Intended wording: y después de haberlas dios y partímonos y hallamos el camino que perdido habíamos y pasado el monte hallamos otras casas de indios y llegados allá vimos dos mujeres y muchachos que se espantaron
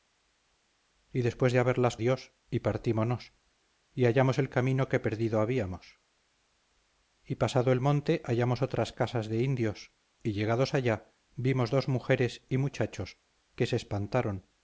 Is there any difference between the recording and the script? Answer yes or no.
no